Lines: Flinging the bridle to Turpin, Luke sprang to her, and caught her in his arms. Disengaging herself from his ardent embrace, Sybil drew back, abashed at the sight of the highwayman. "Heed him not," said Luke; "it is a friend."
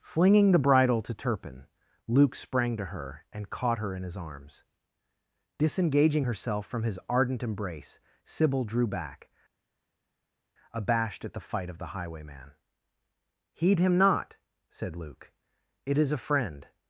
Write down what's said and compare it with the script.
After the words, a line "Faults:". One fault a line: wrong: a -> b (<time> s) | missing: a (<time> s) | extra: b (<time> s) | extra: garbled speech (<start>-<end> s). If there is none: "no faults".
Flinging the bridle to Turpin, Luke sprang to her, and caught her in his arms. Disengaging herself from his ardent embrace, Sybil drew back, abashed at the fight of the highwayman. "Heed him not," said Luke; "it is a friend."
Faults:
wrong: sight -> fight (11.4 s)